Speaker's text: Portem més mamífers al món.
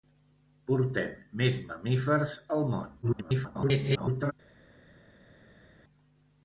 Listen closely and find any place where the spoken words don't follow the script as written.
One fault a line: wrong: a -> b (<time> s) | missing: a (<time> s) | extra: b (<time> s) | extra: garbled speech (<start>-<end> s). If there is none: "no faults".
extra: garbled speech (3.0-4.3 s)